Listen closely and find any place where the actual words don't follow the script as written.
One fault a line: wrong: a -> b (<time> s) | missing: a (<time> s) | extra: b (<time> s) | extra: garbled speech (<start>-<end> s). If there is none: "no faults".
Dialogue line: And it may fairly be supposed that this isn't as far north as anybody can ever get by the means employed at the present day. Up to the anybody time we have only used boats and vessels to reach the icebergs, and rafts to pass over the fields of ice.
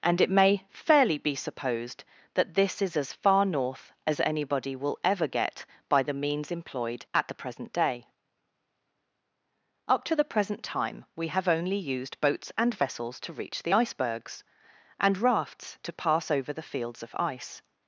wrong: isn't -> is (2.8 s)
wrong: can -> will (4.8 s)
wrong: anybody -> present (10.2 s)